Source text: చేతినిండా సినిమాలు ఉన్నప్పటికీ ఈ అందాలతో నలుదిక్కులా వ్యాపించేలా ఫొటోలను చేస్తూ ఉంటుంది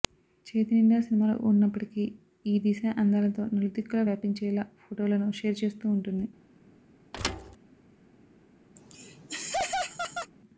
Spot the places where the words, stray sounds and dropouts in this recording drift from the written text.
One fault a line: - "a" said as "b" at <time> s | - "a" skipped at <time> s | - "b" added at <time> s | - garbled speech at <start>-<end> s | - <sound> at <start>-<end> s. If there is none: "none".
- "దిశా" added at 2.6 s
- "షేర్" added at 5.4 s
- thud at 7.1-7.6 s
- laugh at 8.8-10.3 s